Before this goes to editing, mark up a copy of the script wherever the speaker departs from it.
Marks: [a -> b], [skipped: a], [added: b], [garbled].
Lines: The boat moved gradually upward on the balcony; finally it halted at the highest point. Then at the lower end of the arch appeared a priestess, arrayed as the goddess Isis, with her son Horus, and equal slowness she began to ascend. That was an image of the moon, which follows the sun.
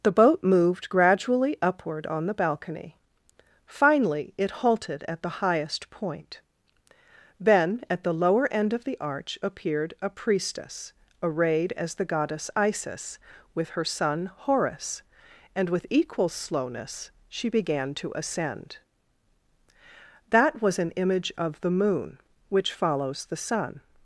The boat moved gradually upward on the balcony; finally it halted at the highest point. Then at the lower end of the arch appeared a priestess, arrayed as the goddess Isis, with her son Horus, and [added: with] equal slowness she began to ascend. That was an image of the moon, which follows the sun.